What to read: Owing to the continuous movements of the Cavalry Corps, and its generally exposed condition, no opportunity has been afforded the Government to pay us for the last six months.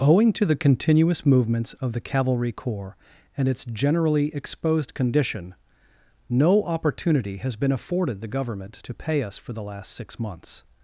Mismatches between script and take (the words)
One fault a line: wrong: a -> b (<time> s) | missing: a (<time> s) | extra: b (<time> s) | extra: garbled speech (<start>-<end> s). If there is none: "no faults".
no faults